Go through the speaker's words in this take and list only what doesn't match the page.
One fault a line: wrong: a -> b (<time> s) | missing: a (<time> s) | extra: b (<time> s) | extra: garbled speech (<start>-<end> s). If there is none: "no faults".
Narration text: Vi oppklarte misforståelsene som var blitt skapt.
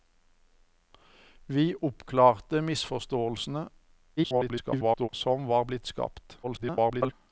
extra: garbled speech (4.2-5.1 s)
extra: garbled speech (6.4-7.1 s)